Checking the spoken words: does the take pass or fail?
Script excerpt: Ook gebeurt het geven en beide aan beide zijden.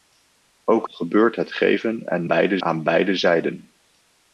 pass